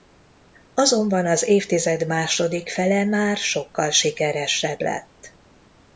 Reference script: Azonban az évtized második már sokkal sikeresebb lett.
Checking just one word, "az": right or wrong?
right